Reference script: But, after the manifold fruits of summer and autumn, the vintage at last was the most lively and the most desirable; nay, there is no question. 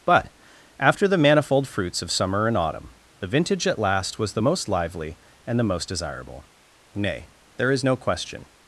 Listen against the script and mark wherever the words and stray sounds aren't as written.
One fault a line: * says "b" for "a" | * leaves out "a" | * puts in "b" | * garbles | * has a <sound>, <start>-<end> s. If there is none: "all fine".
all fine